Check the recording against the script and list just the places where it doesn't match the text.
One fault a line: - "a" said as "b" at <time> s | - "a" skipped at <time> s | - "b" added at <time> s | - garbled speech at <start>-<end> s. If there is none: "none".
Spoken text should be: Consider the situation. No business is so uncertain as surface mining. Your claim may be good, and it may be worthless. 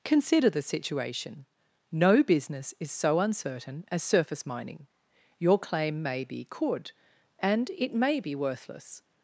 - "good" said as "could" at 6.5 s